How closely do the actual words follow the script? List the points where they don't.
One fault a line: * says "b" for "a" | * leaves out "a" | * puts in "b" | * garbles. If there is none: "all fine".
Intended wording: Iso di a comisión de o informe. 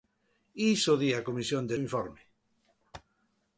all fine